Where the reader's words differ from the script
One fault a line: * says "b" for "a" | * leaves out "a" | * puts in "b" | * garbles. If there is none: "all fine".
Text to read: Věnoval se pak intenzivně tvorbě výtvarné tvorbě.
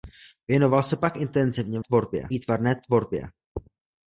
all fine